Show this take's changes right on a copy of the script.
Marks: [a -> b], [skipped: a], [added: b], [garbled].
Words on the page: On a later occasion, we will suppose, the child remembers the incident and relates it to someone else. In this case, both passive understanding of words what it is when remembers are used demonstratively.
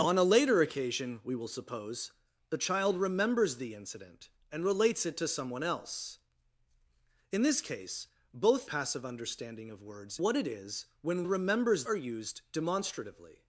On a later occasion, we will suppose, the child remembers the incident and relates it to someone else. In this case, both passive understanding of words what it is when remembers are used demonstratively.